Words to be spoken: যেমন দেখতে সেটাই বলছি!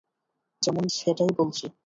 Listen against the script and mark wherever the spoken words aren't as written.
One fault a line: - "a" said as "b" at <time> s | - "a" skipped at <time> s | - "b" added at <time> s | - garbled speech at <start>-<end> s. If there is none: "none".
- "দেখতে" skipped at 0.8 s